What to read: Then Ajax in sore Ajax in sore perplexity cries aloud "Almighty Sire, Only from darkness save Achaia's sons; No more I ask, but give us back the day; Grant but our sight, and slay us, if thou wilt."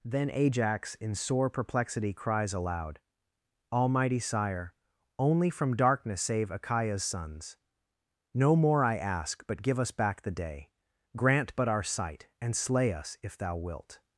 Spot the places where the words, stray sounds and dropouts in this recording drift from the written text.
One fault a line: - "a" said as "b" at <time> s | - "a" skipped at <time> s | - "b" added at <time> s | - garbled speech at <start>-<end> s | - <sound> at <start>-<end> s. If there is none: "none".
- "Ajax in sore" skipped at 1.5 s